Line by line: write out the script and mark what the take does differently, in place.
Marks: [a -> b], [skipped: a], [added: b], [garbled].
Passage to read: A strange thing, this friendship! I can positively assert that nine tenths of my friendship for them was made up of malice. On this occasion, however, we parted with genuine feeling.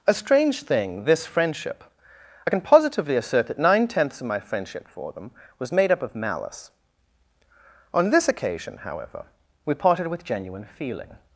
A strange thing, this friendship! I can positively assert that nine tenths of my friendship for them was made up of malice. On this occasion, however, we parted with genuine feeling.